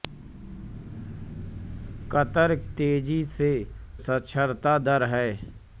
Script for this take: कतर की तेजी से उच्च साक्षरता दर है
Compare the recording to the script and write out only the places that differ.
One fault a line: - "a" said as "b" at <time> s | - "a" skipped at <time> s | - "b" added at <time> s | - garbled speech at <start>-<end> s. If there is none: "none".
- "की" skipped at 2.5 s
- "उच्च" skipped at 3.5 s